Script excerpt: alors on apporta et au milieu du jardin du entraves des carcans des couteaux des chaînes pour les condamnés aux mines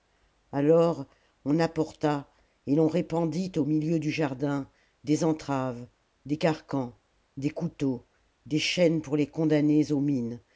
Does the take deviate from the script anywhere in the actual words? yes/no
yes